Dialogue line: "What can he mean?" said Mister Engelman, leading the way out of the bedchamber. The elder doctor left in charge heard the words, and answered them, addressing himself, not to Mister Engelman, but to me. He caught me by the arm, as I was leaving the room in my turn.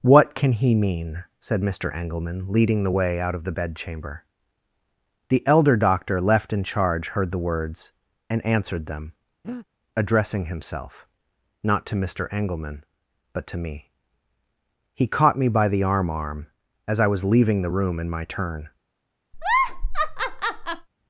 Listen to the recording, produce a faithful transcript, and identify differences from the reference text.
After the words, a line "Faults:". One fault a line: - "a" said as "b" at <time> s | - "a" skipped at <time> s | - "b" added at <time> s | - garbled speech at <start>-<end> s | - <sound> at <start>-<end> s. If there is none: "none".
"What can he mean?" said Mister Engelman, leading the way out of the bedchamber. The elder doctor left in charge heard the words, and answered them, addressing himself, not to Mister Engelman, but to me. He caught me by the arm arm, as I was leaving the room in my turn.
Faults:
- breath at 9.4-9.7 s
- "arm" added at 16.1 s
- laugh at 19.3-20.9 s